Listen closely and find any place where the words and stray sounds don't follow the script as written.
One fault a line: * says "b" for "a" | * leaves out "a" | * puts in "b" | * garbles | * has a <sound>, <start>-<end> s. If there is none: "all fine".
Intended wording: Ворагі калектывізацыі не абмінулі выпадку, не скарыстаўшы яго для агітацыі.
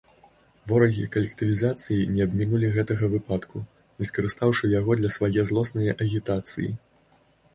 * puts in "гэтага"
* puts in "свае злоснае"